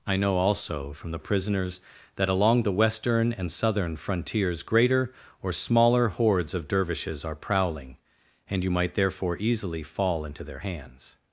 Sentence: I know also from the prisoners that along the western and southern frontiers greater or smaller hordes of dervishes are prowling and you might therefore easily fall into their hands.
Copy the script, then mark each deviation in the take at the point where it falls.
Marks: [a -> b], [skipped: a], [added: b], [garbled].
I know also from the prisoners that along the western and southern frontiers greater or smaller hordes of dervishes are prowling and you might therefore easily fall into their hands.